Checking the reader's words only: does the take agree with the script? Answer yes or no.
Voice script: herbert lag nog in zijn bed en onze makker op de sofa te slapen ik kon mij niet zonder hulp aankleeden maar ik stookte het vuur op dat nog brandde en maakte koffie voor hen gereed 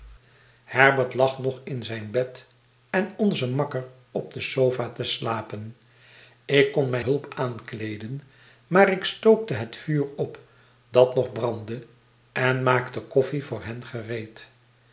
no